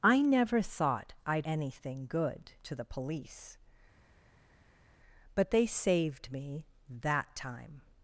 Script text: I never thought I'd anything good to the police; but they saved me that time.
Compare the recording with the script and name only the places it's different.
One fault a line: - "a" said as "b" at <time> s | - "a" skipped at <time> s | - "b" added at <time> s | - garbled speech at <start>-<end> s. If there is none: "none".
none